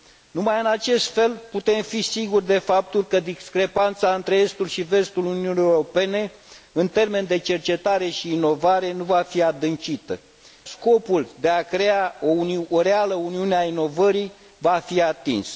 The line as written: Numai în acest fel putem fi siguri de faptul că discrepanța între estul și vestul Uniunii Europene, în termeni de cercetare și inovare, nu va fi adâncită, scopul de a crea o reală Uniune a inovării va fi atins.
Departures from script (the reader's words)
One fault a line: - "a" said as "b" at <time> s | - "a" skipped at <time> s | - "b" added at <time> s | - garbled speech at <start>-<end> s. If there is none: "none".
none